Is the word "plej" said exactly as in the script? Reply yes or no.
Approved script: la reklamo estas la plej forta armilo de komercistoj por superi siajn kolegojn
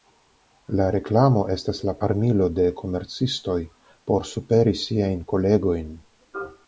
no